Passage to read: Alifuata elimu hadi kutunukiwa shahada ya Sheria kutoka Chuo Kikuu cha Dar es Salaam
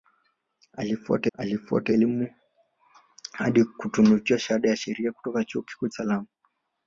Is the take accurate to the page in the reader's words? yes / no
no